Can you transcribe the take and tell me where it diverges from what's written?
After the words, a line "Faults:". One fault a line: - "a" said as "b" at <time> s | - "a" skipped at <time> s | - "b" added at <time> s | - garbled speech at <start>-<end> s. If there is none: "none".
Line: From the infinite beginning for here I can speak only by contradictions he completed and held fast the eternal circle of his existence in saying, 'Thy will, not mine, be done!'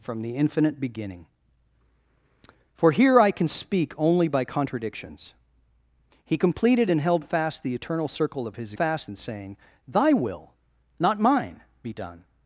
From the infinite beginning for here I can speak only by contradictions he completed and held fast the eternal circle of his fast in saying, 'Thy will, not mine, be done!'
Faults:
- "existence" said as "fast" at 8.7 s